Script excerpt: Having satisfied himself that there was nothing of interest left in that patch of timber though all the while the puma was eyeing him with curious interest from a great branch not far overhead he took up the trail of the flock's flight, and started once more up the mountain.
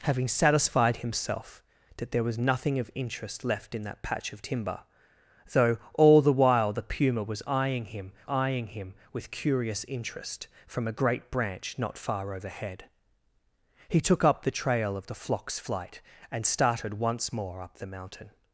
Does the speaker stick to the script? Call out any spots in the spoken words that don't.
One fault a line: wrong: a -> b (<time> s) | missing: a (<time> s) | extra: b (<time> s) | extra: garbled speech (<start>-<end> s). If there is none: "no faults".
extra: eyeing him (8.3 s)